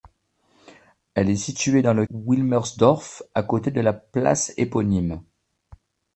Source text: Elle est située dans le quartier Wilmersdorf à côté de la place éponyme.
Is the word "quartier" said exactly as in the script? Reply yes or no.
no